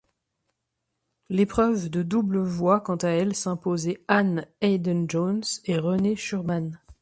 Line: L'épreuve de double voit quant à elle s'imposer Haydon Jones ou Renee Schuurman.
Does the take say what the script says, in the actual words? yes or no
no